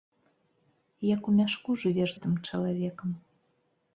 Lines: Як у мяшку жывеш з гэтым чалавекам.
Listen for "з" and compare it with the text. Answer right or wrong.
wrong